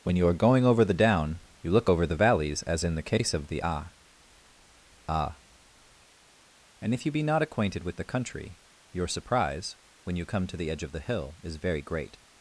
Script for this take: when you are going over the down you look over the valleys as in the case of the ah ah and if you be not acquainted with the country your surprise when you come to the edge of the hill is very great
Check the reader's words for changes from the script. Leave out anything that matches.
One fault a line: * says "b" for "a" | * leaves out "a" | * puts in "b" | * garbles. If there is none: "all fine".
all fine